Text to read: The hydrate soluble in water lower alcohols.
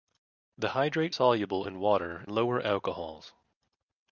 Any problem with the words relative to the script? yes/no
no